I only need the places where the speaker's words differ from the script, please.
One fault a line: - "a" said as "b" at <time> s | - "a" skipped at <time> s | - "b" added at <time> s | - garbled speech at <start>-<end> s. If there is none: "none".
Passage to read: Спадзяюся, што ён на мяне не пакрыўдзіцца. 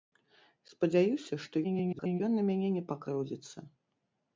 - garbled speech at 1.6-2.2 s